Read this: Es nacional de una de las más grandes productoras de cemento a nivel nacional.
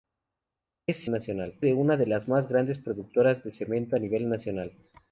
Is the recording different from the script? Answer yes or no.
no